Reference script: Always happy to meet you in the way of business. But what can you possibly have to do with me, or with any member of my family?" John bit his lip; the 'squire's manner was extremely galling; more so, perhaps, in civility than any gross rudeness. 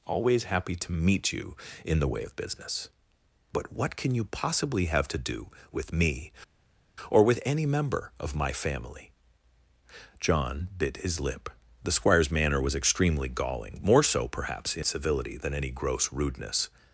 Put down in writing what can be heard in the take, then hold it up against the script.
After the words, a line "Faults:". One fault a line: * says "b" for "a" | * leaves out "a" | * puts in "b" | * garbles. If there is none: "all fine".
Always happy to meet you in the way of business. But what can you possibly have to do with me, or with any member of my family?" John bit his lip; the 'squire's manner was extremely galling; more so, perhaps, in civility than any gross rudeness.
Faults:
all fine